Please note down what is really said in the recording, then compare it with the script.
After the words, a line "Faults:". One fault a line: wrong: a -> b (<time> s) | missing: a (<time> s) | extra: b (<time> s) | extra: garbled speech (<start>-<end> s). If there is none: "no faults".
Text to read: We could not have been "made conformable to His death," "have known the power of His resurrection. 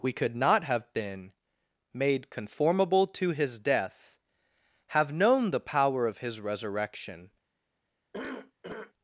We could not have been "made conformable to His death," "have known the power of His resurrection.
Faults:
no faults